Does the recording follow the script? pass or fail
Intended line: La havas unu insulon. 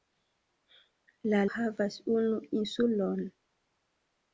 pass